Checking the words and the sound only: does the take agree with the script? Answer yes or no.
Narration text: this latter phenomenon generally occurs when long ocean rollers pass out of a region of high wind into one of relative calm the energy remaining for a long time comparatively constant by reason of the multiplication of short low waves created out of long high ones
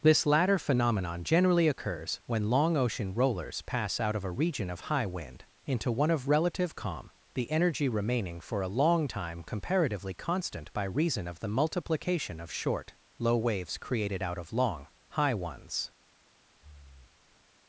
no